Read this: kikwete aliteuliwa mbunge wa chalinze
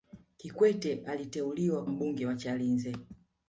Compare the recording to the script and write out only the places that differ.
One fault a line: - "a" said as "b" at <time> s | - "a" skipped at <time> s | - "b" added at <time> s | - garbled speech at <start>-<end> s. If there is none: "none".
none